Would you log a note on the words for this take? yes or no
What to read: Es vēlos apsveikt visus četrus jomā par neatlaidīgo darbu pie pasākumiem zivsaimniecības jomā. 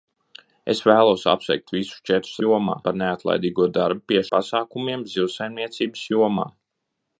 no